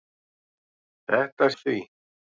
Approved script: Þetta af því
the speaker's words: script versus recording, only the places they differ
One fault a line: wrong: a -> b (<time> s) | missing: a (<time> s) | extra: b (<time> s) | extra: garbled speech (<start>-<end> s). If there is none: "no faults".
no faults